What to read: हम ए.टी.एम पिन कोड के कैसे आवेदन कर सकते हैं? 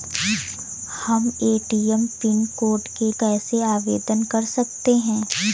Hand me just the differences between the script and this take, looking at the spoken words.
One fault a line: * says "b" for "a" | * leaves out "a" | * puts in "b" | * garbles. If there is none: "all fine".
all fine